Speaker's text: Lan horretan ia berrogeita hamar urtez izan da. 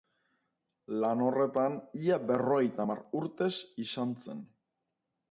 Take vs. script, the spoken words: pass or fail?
fail